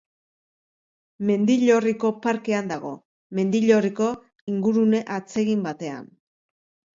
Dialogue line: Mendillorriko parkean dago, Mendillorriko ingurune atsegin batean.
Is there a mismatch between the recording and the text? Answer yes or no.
no